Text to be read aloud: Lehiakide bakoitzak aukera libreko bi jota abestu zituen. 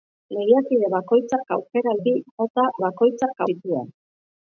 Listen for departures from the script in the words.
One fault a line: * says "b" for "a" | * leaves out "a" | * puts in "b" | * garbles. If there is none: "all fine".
* leaves out "libreko"
* says "bakoitzak" for "abestu"